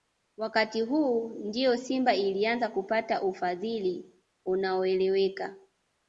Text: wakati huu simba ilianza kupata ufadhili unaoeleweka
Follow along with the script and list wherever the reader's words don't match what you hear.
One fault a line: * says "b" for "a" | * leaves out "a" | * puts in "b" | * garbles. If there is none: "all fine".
* puts in "ndio"